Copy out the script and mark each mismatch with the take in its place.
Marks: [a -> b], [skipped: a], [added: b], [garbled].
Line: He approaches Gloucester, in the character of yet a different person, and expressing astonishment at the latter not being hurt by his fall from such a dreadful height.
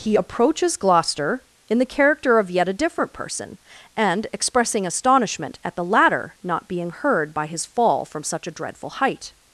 He approaches Gloucester, in the character of yet a different person, and expressing astonishment at the latter not being [hurt -> heard] by his fall from such a dreadful height.